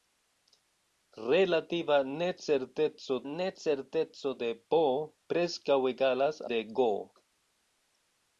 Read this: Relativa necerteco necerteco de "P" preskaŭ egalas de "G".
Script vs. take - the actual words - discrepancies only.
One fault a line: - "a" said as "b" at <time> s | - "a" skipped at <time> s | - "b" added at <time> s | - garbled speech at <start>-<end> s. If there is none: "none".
none